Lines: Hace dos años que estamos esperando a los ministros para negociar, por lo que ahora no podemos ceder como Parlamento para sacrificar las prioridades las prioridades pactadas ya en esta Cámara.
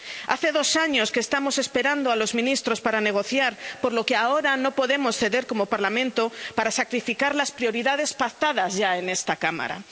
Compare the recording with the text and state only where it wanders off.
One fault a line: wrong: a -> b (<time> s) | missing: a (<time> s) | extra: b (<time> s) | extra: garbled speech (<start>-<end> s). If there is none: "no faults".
missing: las prioridades (8.1 s)